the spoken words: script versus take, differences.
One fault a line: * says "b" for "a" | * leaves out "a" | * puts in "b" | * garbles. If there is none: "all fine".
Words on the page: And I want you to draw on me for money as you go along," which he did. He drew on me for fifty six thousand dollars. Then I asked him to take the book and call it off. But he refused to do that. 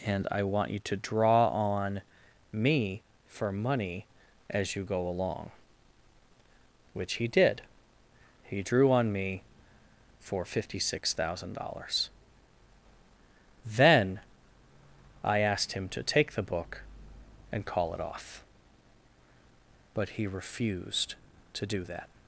all fine